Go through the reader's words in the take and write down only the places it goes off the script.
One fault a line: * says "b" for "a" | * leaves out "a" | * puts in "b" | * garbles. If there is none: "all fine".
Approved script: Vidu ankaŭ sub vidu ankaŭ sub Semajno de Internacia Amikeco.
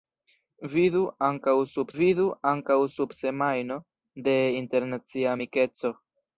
all fine